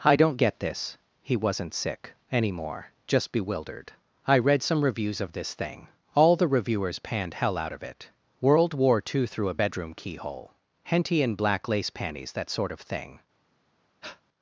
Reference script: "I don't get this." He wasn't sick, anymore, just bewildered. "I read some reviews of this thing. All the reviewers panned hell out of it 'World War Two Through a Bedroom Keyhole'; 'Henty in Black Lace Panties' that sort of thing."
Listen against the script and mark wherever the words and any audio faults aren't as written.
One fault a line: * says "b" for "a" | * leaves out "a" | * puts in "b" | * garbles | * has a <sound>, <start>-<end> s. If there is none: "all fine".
* has a breath, 14.0-14.2 s